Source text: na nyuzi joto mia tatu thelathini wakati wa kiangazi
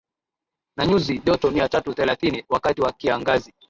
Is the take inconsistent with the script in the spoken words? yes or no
no